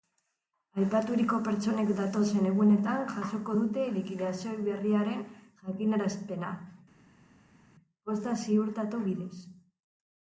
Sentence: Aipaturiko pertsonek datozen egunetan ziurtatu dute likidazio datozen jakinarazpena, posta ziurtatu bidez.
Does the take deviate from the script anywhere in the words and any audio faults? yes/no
yes